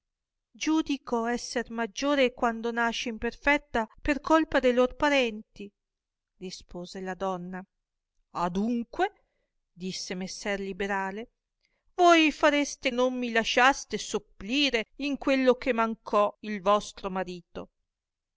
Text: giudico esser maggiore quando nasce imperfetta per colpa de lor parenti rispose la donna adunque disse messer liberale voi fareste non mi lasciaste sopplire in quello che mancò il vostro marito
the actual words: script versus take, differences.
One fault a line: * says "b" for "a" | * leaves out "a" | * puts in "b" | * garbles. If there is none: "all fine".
all fine